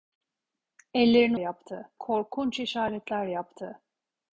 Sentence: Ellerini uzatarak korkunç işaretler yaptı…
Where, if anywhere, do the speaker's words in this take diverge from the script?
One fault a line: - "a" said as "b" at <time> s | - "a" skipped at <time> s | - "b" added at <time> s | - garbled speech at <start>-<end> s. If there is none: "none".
- "uzatarak" said as "yaptı" at 1.4 s